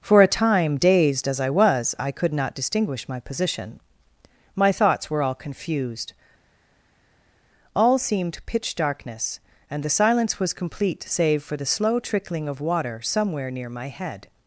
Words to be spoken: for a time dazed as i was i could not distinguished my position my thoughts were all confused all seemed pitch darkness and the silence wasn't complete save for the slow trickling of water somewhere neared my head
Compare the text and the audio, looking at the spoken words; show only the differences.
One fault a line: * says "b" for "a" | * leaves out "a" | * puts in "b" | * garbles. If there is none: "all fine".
* says "distinguish" for "distinguished"
* says "was" for "wasn't"
* says "near" for "neared"